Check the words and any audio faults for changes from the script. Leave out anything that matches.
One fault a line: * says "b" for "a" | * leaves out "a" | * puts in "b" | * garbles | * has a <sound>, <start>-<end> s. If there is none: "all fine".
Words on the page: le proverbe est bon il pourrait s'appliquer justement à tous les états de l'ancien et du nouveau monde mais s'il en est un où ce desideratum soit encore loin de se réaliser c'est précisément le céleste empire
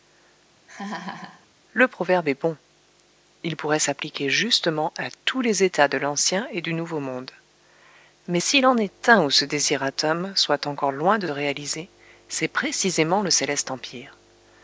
* has a laugh, 0.7-1.5 s
* leaves out "se"